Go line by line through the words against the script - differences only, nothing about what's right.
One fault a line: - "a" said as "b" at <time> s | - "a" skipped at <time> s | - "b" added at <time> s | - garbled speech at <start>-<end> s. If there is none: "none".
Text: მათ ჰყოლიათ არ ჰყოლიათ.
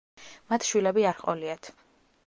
- "ჰყოლიათ" said as "შვილები" at 0.7 s